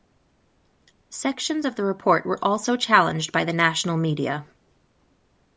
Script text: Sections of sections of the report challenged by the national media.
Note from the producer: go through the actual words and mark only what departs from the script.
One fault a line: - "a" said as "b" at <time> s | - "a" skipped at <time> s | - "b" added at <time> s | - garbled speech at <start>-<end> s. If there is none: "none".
- "sections of the report" said as "the report were also" at 1.8 s